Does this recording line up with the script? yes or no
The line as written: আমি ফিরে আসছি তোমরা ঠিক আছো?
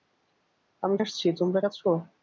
no